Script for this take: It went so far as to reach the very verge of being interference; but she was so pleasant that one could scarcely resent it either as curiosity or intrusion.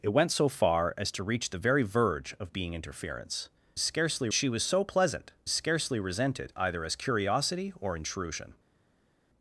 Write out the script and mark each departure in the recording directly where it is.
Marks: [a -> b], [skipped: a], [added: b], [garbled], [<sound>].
It went so far as to reach the very verge of being interference; [but -> scarcely] she was so pleasant [skipped: that one could] scarcely resent it either as curiosity or intrusion.